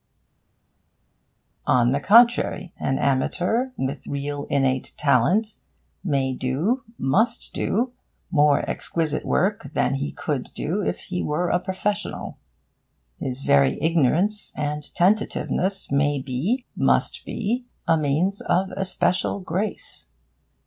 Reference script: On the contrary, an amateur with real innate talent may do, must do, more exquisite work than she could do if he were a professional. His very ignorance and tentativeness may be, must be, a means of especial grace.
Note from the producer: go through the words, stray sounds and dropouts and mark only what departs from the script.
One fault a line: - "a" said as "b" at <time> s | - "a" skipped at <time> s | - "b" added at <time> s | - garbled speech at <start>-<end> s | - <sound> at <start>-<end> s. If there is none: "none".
- "she" said as "he" at 9.9 s